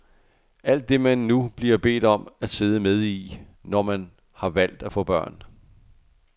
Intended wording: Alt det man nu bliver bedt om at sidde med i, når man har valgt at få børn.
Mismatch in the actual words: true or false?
false